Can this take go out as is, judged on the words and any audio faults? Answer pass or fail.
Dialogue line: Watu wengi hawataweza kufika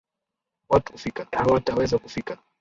fail